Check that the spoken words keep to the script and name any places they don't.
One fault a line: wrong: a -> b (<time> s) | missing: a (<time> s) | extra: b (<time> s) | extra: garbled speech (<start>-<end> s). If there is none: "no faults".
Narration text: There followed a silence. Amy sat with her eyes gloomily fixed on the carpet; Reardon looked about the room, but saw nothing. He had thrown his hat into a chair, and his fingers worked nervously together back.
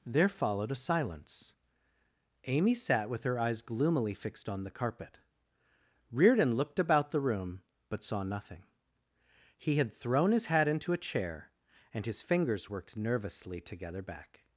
no faults